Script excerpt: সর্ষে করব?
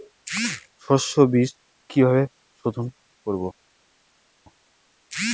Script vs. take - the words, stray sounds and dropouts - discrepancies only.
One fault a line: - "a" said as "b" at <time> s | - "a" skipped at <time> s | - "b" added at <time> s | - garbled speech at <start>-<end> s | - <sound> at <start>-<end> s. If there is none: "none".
- "বিজ কিভাবে সোধোন" added at 1.3 s